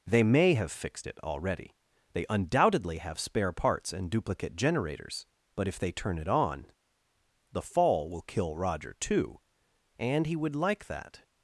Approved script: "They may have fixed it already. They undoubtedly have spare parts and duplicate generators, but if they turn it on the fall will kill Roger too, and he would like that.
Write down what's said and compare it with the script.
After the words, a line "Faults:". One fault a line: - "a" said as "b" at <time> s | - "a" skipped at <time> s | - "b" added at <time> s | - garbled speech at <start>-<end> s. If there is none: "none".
"They may have fixed it already. They undoubtedly have spare parts and duplicate generators, but if they turn it on the fall will kill Roger too, and he would like that.
Faults:
none